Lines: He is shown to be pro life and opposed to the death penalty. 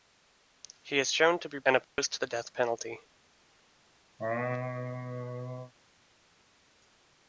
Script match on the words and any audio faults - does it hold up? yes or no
no